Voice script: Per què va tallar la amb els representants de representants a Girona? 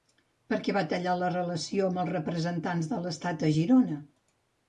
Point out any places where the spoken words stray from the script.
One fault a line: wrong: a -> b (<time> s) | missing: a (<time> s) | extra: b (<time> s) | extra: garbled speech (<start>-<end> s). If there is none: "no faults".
extra: relació (1.3 s)
wrong: representants -> l'estat (3.0 s)